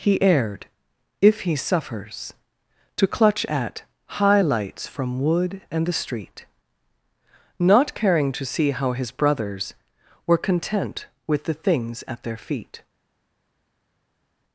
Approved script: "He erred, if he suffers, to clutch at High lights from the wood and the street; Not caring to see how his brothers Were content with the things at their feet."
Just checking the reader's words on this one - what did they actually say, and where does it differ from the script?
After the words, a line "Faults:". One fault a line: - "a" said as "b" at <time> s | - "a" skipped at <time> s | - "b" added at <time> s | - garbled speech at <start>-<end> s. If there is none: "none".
"He erred, if he suffers, to clutch at High lights from wood and the street; Not caring to see how his brothers Were content with the things at their feet."
Faults:
- "the" skipped at 5.2 s